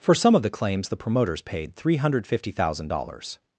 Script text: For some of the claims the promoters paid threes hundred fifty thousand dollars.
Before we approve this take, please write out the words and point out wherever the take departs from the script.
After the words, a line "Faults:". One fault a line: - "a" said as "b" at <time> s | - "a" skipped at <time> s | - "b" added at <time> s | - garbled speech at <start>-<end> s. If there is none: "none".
For some of the claims the promoters paid three hundred fifty thousand dollars.
Faults:
- "threes" said as "three" at 1.8 s